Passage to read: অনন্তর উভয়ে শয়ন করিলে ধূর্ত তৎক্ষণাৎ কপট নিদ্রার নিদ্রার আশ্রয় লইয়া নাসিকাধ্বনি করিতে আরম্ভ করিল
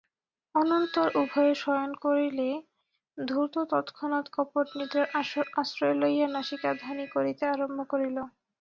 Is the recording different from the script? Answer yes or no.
yes